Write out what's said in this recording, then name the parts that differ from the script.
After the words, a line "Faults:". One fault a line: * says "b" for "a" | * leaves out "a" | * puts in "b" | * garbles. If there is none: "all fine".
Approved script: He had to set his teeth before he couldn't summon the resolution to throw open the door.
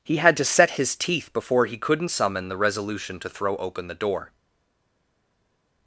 He had to set his teeth before he couldn't summon the resolution to throw open the door.
Faults:
all fine